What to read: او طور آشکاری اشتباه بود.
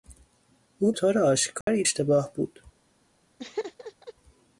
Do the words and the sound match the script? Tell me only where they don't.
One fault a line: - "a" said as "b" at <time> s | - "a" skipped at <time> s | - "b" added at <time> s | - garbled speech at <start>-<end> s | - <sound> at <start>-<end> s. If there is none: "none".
- dropout at 1.6-1.7 s
- laugh at 3.4-4.1 s